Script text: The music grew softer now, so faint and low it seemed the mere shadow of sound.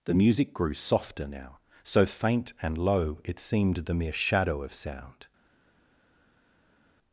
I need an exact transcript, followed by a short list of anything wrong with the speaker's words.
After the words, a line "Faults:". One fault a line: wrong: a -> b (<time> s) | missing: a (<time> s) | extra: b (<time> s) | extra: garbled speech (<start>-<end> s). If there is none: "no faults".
The music grew softer now, so faint and low it seemed the mere shadow of sound.
Faults:
no faults